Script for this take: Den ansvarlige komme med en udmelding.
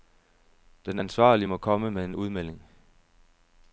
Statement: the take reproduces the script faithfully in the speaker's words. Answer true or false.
false